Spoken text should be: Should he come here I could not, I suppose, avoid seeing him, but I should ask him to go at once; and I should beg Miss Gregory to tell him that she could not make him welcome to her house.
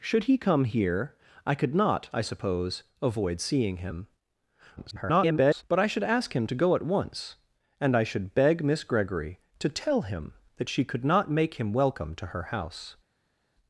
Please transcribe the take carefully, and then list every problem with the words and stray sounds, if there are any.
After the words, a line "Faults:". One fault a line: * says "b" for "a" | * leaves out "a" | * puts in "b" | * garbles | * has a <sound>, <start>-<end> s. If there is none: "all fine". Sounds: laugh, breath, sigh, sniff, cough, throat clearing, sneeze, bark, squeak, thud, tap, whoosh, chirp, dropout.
Should he come here I could not, I suppose, avoid seeing him, [garbled] but I should ask him to go at once; and I should beg Miss Gregory to tell him that she could not make him welcome to her house.
Faults:
* garbles